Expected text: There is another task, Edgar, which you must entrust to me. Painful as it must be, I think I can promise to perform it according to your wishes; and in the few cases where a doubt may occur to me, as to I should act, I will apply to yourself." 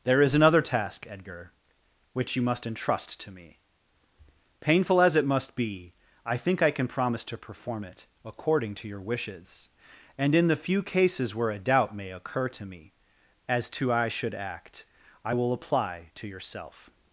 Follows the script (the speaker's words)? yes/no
yes